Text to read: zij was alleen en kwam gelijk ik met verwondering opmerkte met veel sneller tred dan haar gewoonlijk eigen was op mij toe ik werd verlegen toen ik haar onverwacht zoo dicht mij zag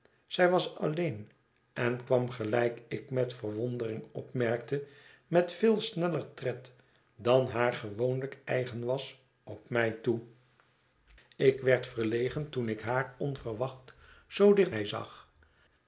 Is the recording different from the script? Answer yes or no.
no